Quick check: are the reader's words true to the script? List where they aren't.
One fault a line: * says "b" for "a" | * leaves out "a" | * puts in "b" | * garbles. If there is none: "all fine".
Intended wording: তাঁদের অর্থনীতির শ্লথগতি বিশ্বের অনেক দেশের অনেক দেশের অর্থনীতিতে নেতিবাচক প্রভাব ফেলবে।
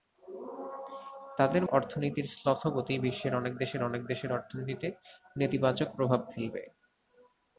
all fine